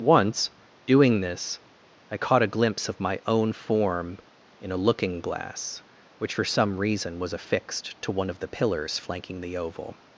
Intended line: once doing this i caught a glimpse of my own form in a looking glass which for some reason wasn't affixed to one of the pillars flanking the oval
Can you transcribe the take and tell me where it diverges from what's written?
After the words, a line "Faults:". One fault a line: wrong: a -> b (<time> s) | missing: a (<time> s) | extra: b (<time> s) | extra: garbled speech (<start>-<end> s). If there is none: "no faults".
once doing this i caught a glimpse of my own form in a looking glass which for some reason was affixed to one of the pillars flanking the oval
Faults:
wrong: wasn't -> was (7.2 s)